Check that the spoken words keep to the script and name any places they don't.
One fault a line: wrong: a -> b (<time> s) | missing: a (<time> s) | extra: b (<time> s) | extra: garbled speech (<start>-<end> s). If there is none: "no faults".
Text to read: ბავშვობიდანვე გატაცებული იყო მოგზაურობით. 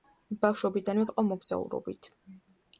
missing: გატაცებული (1.0 s)